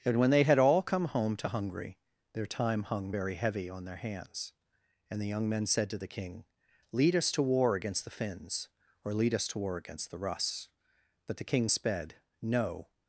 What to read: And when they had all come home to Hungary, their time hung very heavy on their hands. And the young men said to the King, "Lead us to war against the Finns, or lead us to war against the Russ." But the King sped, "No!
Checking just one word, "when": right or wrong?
right